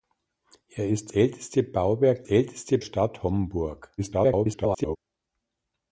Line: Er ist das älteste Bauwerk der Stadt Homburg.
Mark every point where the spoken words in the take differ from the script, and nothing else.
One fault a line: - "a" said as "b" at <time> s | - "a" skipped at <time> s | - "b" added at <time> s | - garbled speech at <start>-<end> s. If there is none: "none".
- "das" skipped at 1.1 s
- "der" said as "älteste" at 2.2 s
- garbled speech at 4.0-5.0 s